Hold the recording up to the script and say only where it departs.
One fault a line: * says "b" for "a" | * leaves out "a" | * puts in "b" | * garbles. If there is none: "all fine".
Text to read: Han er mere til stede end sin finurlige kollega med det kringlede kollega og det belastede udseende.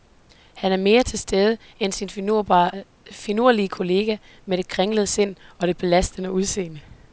* says "sind" for "kollega"